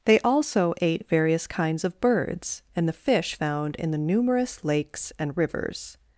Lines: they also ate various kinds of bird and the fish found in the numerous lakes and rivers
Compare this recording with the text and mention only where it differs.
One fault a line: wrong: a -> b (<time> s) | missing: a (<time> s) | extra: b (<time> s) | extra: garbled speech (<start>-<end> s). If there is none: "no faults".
wrong: bird -> birds (2.0 s)